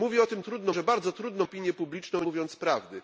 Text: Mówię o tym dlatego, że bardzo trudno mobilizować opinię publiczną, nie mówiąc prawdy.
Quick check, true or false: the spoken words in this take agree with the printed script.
false